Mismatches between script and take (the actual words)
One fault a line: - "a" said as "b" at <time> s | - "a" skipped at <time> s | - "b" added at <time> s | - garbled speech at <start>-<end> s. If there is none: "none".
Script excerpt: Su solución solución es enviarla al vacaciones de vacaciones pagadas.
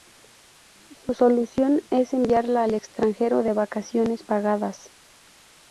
- "solución" skipped at 1.8 s
- "vacaciones" said as "extranjero" at 2.7 s